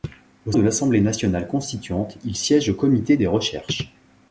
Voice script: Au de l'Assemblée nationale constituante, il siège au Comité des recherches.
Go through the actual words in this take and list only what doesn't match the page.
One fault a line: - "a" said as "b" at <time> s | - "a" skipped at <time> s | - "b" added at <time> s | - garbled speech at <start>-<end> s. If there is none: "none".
none